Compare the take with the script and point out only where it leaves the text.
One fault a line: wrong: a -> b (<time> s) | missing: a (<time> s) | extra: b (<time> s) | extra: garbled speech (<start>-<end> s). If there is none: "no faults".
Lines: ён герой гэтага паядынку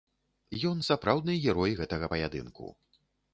extra: сапраўдны (0.9 s)